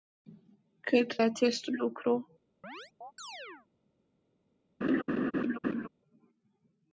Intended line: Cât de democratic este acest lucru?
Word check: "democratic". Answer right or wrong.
wrong